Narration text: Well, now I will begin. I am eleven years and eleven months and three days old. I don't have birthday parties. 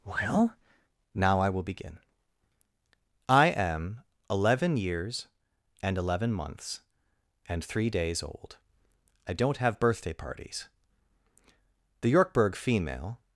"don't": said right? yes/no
yes